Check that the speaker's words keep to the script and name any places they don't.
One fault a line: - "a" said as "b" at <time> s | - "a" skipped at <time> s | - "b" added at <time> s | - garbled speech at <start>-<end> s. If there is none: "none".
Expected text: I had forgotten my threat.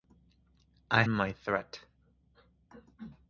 - "had forgotten" skipped at 1.0 s